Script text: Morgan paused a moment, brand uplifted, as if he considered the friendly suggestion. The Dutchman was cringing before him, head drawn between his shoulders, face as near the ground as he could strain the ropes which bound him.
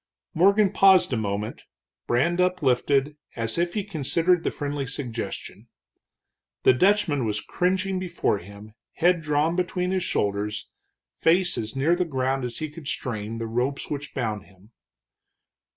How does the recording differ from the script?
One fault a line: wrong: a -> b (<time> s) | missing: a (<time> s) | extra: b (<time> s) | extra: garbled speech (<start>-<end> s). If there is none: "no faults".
no faults